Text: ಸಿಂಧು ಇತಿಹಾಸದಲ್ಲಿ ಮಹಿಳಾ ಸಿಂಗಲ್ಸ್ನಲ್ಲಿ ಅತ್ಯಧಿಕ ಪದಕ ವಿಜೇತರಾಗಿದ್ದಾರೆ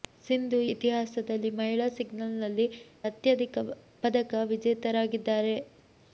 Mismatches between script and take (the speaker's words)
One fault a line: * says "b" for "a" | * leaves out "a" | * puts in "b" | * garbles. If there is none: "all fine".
all fine